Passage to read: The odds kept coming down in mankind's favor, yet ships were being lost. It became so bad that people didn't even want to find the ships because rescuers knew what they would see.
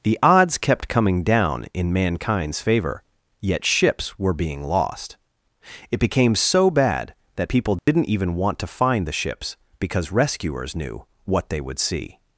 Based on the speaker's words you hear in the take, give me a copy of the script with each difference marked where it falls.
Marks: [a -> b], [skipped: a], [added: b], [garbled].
The odds kept coming down in mankind's favor, yet ships were being lost. It became so bad that people didn't even want to find the ships because rescuers knew what they would see.